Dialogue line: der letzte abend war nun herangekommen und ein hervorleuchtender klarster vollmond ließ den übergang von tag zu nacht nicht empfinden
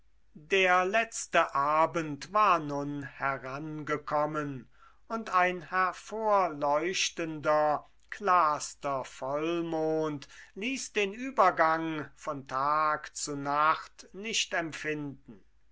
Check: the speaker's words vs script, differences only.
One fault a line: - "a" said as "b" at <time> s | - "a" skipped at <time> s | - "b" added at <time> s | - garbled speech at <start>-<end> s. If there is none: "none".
none